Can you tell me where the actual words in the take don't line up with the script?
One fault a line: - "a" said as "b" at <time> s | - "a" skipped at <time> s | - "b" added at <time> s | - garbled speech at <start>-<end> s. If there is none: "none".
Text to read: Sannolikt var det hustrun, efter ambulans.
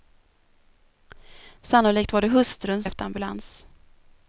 none